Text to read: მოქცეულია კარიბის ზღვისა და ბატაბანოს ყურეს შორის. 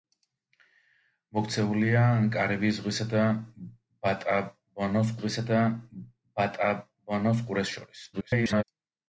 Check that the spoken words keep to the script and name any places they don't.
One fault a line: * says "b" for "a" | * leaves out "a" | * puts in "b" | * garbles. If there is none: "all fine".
* puts in "ზღვისა და ბატაბანოს"
* garbles